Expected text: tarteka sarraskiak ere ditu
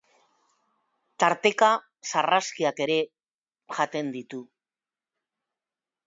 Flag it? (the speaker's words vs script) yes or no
yes